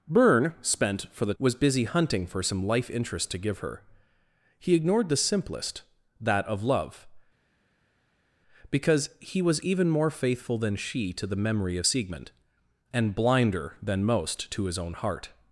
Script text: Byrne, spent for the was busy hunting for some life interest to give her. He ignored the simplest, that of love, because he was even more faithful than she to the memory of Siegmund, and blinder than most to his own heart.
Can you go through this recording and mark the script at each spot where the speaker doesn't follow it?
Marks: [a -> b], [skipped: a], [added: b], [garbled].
Byrne, spent for the was busy hunting for some life interest to give her. He ignored the simplest, that of love, because he was even more faithful than she to the memory of Siegmund, and blinder than most to his own heart.